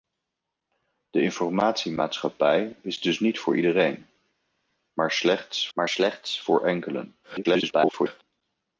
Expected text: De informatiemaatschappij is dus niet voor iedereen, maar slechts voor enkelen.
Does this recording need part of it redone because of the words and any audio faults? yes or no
yes